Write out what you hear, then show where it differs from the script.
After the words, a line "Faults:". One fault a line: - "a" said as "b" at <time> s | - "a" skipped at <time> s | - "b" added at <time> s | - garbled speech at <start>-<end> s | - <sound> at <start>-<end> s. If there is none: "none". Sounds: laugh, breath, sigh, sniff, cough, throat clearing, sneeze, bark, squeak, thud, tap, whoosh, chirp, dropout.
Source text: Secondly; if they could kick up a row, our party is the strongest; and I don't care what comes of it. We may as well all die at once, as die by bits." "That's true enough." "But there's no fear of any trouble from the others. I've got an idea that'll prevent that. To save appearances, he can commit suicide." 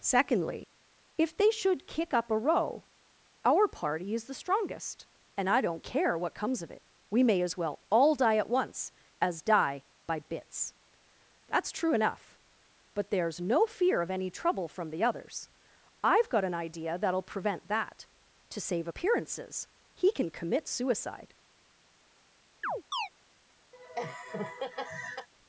Secondly; if they should kick up a row, our party is the strongest; and I don't care what comes of it. We may as well all die at once, as die by bits." "That's true enough." "But there's no fear of any trouble from the others. I've got an idea that'll prevent that. To save appearances, he can commit suicide."
Faults:
- "could" said as "should" at 1.5 s
- chirp at 22.6-23.1 s
- laugh at 23.7-25.3 s